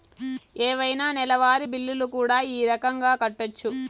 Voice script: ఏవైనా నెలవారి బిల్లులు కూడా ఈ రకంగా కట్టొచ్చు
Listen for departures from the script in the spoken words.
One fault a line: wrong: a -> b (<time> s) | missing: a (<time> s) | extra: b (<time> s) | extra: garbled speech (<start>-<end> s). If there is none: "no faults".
no faults